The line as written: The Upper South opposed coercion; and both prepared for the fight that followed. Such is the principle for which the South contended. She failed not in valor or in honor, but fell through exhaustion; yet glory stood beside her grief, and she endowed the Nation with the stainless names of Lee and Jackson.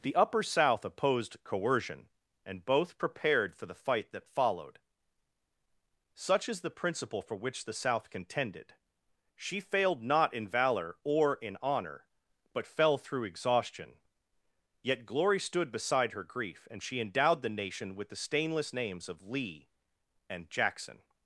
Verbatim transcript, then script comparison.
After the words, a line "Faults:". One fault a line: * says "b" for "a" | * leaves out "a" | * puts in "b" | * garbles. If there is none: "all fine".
The Upper South opposed coercion; and both prepared for the fight that followed. Such is the principle for which the South contended. She failed not in valor or in honor, but fell through exhaustion; yet glory stood beside her grief, and she endowed the Nation with the stainless names of Lee and Jackson.
Faults:
all fine